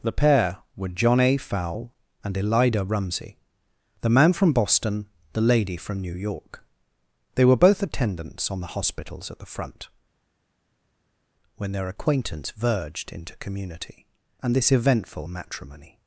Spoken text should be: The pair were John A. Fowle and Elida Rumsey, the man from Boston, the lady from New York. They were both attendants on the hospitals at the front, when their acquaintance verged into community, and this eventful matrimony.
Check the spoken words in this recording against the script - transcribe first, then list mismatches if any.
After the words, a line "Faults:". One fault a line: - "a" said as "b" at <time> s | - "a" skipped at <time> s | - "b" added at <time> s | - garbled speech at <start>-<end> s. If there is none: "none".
The pair were John A. Fowle and Elida Rumsey, the man from Boston, the lady from New York. They were both attendants on the hospitals at the front, when their acquaintance verged into community, and this eventful matrimony.
Faults:
none